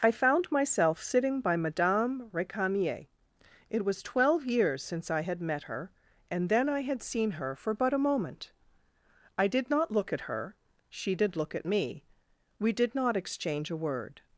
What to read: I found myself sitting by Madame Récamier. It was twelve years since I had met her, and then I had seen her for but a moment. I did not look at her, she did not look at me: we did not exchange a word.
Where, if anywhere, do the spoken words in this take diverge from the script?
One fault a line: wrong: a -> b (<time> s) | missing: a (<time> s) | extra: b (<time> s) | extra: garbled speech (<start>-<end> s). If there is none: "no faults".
missing: not (11.3 s)